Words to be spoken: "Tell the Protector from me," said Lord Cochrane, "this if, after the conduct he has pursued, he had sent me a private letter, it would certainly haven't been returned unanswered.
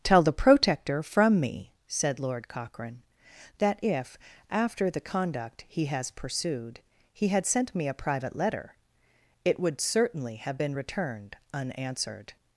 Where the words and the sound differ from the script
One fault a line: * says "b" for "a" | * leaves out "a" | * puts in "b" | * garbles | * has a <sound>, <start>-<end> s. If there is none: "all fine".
* says "that" for "this"
* says "have" for "haven't"